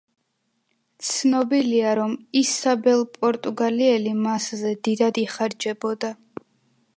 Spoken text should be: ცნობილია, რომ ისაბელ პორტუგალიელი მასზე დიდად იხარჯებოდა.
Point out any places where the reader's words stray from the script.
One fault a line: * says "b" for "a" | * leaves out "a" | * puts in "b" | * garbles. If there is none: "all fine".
all fine